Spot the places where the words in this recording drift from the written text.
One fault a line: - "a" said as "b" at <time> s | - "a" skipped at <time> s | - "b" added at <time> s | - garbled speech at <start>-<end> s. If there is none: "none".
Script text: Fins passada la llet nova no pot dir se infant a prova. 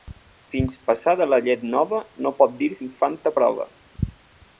- "se" skipped at 2.7 s